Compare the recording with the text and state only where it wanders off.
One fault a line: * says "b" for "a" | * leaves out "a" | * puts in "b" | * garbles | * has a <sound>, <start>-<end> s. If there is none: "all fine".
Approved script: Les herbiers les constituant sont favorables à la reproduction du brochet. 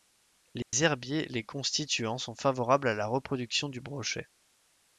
* has a dropout, 0.6-0.7 s